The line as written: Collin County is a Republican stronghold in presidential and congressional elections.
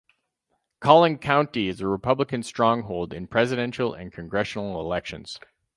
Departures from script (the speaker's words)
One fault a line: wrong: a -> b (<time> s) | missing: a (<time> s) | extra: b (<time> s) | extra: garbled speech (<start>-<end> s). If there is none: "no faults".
no faults